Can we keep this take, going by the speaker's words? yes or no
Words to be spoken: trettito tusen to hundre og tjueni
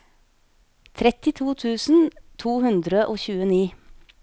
yes